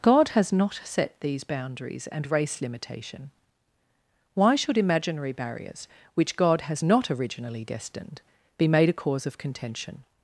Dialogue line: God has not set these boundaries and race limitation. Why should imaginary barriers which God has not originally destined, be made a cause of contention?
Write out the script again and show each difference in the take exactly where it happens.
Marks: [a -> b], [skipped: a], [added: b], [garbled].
God has not set these boundaries and race limitation. Why should imaginary barriers which God has not originally destined, be made a cause of contention?